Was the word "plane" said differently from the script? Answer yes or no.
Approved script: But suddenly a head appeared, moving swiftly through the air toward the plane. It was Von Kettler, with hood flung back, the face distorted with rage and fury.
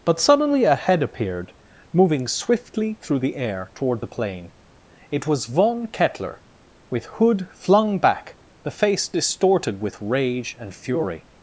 no